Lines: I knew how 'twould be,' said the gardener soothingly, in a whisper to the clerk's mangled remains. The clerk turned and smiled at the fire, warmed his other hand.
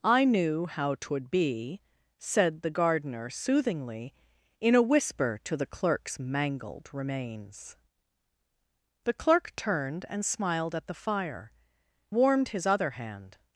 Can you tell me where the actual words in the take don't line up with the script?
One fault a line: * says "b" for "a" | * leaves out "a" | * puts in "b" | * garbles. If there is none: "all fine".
all fine